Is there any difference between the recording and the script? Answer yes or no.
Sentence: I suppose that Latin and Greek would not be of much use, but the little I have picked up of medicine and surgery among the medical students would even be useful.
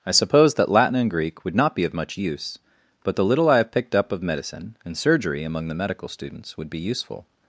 yes